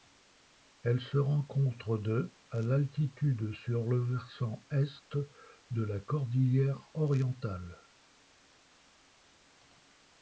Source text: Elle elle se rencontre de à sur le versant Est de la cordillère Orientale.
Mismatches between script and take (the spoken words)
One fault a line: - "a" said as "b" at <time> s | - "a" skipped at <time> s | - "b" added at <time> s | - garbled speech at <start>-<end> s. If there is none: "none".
- "elle" skipped at 1.0 s
- "d'altitude" added at 2.6 s